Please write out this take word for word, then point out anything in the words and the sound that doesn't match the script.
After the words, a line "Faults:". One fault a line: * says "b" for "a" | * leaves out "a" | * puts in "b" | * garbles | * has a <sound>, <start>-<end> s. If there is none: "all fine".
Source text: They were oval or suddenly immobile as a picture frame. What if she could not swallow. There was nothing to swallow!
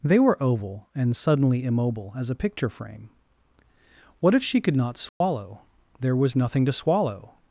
They were oval and suddenly immobile as a picture frame. What if she could not swallow. There was nothing to swallow!
Faults:
* says "and" for "or"
* has a dropout, 5.1-5.2 s